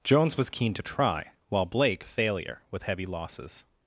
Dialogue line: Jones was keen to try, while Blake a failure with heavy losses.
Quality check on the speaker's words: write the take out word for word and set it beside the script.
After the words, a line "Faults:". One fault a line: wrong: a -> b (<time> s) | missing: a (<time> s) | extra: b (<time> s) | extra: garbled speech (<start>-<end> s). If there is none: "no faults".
Jones was keen to try, while Blake a failure with heavy losses.
Faults:
no faults